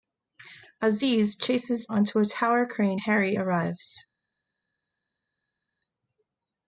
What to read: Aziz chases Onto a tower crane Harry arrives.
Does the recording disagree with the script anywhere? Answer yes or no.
no